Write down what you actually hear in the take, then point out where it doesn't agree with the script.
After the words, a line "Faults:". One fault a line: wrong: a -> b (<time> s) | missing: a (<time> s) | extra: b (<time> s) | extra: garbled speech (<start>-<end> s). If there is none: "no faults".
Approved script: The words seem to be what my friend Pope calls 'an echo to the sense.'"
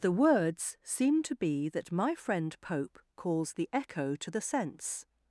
The words seem to be that my friend Pope calls 'the echo to the sense.'"
Faults:
wrong: what -> that (1.7 s)
wrong: an -> the (3.5 s)